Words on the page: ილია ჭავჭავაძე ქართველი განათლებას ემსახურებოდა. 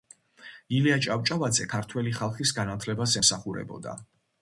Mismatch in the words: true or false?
true